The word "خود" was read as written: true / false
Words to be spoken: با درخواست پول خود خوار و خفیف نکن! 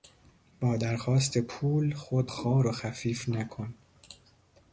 true